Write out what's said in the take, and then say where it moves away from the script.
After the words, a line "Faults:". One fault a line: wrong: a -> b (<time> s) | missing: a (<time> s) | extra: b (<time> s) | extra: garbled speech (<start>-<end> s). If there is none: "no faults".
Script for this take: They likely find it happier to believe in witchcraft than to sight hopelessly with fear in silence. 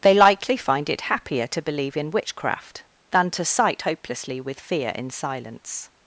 They likely find it happier to believe in witchcraft than to sight hopelessly with fear in silence.
Faults:
no faults